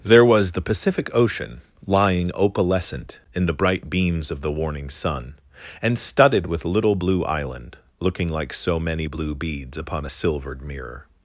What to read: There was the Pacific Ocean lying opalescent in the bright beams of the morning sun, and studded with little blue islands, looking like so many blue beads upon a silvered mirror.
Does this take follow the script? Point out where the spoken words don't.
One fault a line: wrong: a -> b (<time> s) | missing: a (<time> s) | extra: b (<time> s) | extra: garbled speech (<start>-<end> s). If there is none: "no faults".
wrong: morning -> warning (4.5 s)
wrong: islands -> island (7.2 s)